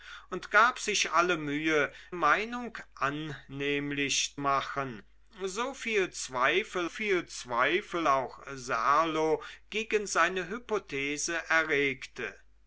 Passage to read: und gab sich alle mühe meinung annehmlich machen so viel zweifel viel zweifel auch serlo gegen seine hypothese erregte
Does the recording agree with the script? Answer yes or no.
yes